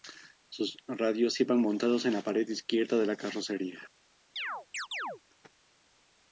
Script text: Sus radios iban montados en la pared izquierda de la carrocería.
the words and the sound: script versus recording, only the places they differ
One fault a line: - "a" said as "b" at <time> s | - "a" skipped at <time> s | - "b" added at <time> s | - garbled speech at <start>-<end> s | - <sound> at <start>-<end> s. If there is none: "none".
- chirp at 4.4-5.2 s